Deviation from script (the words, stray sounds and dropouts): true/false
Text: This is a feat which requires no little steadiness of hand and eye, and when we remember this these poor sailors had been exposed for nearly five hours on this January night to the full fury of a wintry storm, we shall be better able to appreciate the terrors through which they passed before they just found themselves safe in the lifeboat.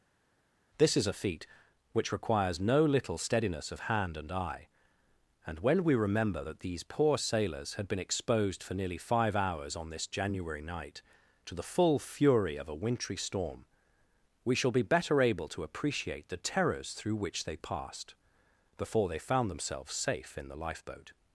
true